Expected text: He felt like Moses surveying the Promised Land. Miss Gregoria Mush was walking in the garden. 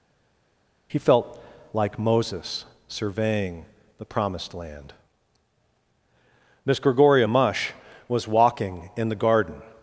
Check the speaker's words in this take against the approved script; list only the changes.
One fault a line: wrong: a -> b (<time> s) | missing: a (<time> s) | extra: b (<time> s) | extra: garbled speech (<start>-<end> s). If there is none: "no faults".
no faults